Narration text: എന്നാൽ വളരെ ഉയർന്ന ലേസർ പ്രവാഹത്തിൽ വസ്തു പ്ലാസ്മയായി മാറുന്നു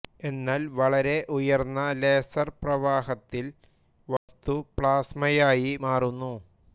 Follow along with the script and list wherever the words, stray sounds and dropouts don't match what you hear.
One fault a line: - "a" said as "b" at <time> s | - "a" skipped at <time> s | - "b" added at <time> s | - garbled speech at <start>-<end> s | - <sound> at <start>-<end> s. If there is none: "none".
- dropout at 4.2-4.3 s